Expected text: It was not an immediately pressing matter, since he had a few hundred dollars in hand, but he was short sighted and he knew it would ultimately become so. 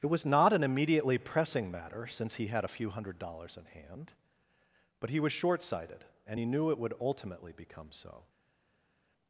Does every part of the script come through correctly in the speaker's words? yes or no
yes